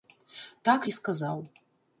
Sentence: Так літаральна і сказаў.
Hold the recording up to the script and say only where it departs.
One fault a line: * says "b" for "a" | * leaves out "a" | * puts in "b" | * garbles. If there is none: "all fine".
* leaves out "літаральна"